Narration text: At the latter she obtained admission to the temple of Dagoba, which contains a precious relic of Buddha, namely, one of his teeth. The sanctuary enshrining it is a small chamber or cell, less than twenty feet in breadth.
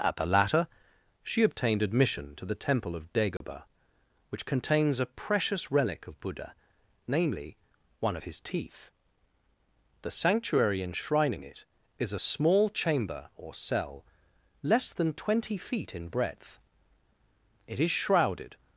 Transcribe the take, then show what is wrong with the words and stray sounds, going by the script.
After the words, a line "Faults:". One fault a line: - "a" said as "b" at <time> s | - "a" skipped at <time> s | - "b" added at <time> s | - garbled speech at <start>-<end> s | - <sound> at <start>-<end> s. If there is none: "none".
At the latter she obtained admission to the temple of Dagoba, which contains a precious relic of Buddha, namely, one of his teeth. The sanctuary enshrining it is a small chamber or cell, less than twenty feet in breadth. It is shrouded
Faults:
- dropout at 3.4-3.4 s
- "It is shrouded" added at 17.7 s